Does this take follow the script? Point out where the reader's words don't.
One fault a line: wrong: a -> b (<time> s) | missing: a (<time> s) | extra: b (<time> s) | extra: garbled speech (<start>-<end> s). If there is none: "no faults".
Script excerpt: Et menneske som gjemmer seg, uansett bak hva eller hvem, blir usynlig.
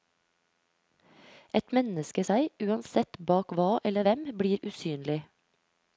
missing: som gjemmer (2.2 s)